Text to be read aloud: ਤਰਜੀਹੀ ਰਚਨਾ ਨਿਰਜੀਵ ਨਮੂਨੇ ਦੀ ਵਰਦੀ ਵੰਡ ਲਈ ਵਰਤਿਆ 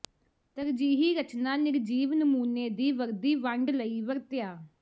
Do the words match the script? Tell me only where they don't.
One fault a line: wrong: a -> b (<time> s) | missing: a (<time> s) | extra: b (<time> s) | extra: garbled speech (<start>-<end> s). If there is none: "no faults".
no faults